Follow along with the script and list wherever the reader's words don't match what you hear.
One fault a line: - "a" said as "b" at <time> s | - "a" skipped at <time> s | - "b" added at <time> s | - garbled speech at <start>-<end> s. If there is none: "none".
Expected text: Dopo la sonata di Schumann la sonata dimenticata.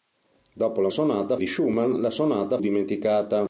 none